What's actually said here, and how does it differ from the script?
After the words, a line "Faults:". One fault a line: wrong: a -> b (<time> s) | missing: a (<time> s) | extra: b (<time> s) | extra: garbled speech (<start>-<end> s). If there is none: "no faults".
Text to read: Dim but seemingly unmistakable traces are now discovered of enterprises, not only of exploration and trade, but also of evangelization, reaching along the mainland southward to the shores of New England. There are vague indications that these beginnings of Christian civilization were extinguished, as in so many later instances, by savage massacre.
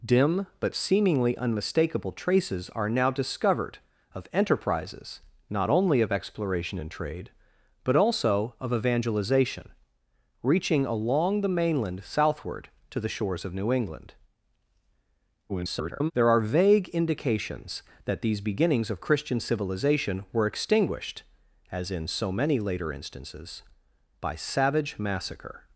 Dim but seemingly unmistakable traces are now discovered of enterprises, not only of exploration and trade, but also of evangelization, reaching along the mainland southward to the shores of New England. [garbled] There are vague indications that these beginnings of Christian civilization were extinguished, as in so many later instances, by savage massacre.
Faults:
extra: garbled speech (15.5-16.1 s)